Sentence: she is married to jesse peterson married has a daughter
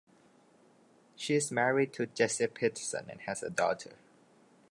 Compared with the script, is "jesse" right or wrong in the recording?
right